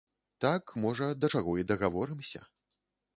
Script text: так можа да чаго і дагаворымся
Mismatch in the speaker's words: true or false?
false